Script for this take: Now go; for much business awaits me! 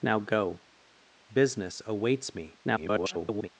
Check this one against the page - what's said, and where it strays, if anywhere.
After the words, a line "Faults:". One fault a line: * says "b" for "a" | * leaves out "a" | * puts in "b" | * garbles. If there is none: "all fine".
Now go; business awaits me! [garbled]
Faults:
* leaves out "for much"
* garbles